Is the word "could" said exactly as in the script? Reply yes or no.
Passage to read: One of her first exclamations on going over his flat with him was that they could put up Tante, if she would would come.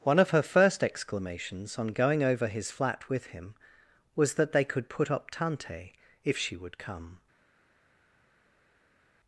yes